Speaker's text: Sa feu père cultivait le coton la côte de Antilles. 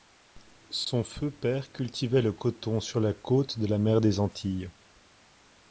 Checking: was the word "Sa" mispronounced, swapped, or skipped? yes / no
yes